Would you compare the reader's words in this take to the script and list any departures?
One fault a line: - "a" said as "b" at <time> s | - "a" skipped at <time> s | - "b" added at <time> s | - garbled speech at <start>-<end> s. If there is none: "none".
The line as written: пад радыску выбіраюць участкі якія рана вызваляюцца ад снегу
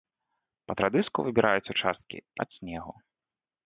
- "якія рана вызваляюцца" skipped at 2.2 s